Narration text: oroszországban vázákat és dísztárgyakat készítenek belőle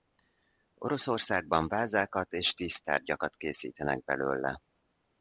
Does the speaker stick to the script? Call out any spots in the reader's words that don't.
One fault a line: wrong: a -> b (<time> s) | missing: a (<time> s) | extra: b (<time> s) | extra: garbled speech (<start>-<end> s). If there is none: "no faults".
no faults